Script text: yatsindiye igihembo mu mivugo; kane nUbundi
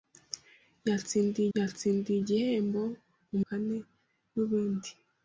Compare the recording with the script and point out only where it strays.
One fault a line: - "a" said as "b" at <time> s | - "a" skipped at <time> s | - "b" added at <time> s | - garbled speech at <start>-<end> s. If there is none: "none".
- "yatsindiye" added at 1.6 s
- "mivugo" skipped at 3.4 s